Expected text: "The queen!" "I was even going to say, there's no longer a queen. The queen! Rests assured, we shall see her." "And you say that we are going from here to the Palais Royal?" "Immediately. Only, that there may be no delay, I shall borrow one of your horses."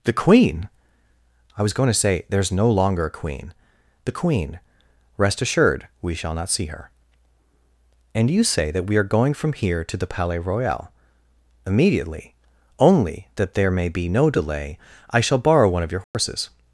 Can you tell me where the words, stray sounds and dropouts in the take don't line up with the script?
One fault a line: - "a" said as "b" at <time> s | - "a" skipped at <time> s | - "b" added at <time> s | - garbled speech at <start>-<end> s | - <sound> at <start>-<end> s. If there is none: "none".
- "even" skipped at 1.7 s
- "Rests" said as "Rest" at 5.2 s
- "not" added at 6.3 s
- dropout at 16.0-16.1 s